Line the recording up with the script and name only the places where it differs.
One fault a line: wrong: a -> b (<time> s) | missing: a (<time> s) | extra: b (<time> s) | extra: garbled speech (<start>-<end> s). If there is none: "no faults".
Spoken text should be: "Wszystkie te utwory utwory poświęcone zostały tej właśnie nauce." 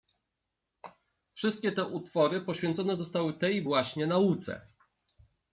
missing: utwory (2.4 s)